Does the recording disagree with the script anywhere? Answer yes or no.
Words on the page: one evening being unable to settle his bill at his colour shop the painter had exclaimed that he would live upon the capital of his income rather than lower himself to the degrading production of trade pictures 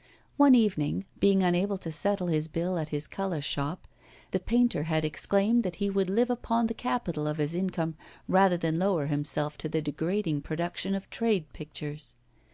no